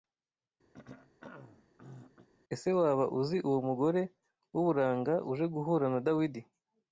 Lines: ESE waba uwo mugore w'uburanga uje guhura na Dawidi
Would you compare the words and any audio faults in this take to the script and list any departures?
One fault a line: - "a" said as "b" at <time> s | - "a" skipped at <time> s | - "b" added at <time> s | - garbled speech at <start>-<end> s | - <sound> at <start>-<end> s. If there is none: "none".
- throat clearing at 0.7-2.3 s
- "uzi" added at 3.2 s